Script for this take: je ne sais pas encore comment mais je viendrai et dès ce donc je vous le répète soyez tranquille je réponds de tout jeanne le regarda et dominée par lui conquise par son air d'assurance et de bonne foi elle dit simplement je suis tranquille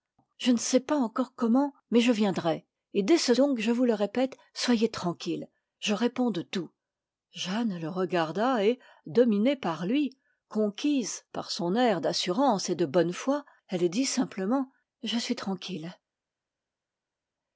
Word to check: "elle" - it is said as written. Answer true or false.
true